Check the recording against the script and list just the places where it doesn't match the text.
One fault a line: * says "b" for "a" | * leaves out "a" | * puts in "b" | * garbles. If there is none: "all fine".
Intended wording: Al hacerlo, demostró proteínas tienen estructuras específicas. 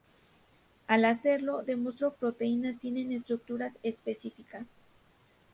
all fine